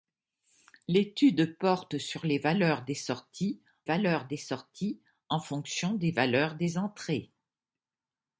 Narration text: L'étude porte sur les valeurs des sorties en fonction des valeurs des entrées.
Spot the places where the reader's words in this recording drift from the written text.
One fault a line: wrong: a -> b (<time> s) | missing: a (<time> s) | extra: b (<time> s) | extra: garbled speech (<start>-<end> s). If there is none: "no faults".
extra: valeurs des sorties (3.8 s)